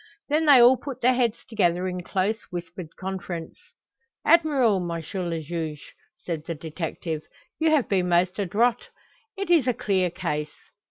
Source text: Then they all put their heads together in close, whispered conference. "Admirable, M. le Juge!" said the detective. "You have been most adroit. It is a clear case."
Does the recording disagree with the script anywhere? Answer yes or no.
no